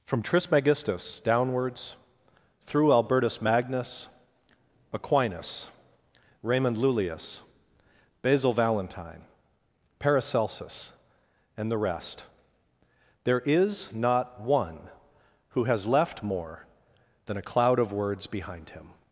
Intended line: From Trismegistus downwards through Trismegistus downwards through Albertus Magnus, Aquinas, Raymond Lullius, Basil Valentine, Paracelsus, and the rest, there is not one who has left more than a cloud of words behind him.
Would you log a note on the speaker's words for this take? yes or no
yes